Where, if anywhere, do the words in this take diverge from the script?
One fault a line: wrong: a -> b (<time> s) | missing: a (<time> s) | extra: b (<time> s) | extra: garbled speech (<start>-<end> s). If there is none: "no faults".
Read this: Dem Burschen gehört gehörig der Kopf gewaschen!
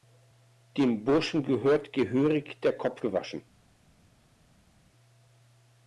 no faults